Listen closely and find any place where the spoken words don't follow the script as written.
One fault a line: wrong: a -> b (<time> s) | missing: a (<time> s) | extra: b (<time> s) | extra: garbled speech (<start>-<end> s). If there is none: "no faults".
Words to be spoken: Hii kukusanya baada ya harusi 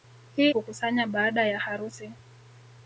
no faults